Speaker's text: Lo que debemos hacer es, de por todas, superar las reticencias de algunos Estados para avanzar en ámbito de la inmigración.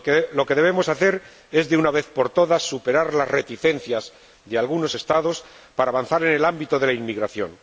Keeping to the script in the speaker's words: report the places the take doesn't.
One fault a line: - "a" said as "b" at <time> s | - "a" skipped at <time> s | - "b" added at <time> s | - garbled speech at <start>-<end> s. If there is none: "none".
- "una vez" added at 1.8 s
- "el" added at 6.3 s